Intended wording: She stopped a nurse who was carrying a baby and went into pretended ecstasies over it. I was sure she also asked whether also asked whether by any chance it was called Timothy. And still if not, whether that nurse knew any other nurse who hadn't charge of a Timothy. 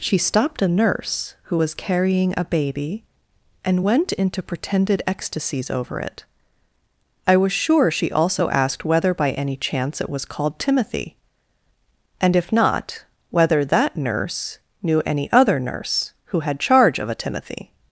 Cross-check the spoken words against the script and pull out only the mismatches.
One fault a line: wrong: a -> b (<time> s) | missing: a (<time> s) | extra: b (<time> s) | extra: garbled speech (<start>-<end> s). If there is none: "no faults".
missing: also asked whether (9.2 s)
missing: still (12.4 s)
wrong: hadn't -> had (16.4 s)